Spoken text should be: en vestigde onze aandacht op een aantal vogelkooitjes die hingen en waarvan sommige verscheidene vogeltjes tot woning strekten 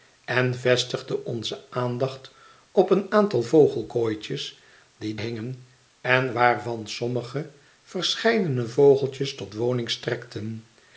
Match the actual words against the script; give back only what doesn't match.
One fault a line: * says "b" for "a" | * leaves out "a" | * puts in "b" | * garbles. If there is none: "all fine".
all fine